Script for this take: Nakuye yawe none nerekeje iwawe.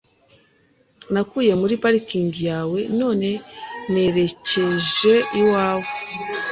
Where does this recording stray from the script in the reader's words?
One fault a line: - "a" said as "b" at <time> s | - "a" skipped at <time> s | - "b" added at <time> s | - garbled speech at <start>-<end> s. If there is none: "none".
- "muri parikingi" added at 1.6 s